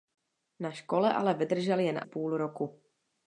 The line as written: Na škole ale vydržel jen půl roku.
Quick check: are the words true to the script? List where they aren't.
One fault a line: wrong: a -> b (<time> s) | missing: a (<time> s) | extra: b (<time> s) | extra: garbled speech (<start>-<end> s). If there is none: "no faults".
no faults